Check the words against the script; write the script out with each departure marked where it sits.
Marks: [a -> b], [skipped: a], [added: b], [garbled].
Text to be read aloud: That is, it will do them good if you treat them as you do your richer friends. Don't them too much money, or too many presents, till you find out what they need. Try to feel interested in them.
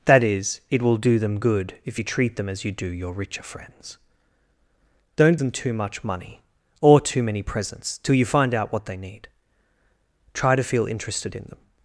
That is, it will do them good if you treat them as you do your richer friends. Don't them too much money, or too many presents, till you find out what they need. Try to feel interested in them.